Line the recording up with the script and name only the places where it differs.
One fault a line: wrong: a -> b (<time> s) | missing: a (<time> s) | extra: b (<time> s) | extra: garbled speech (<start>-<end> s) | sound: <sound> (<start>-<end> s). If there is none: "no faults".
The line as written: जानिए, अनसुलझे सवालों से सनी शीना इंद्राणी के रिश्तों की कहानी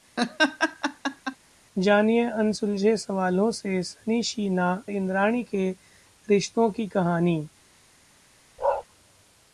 sound: laugh (0.2-1.4 s)
sound: bark (8.6-8.8 s)